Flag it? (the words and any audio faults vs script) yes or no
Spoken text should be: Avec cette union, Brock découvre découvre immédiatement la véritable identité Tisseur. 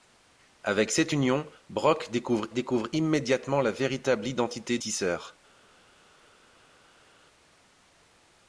no